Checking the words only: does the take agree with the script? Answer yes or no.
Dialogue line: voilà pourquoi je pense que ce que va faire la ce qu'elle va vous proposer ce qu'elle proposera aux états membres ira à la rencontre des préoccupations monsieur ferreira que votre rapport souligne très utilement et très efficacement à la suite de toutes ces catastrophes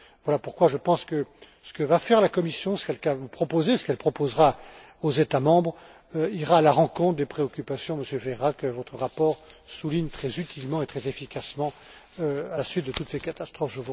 no